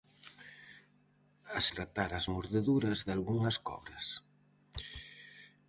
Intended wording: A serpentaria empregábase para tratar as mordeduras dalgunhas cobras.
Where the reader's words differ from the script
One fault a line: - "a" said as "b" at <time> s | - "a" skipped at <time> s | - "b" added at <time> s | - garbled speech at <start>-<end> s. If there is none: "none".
- "serpentaria empregábase para" skipped at 1.6 s